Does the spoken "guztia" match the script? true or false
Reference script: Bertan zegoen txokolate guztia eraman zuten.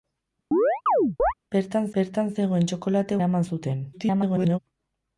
false